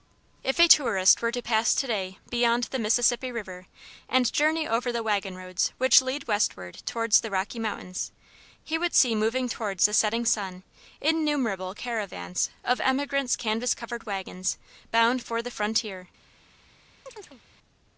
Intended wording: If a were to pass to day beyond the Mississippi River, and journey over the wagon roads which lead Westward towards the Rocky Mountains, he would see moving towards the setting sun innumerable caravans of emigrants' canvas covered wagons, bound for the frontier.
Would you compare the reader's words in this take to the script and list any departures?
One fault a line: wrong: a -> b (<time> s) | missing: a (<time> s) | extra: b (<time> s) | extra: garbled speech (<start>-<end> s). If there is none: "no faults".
extra: tourist (0.6 s)